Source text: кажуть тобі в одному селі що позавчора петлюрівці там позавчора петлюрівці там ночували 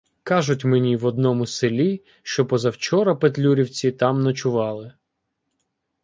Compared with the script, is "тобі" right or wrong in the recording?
wrong